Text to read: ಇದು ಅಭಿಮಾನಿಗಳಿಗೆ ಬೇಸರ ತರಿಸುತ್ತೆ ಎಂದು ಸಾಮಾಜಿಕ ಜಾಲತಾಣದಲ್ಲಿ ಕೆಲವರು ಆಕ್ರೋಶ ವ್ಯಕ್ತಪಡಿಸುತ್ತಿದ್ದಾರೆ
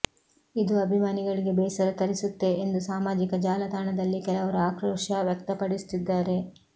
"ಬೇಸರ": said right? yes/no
yes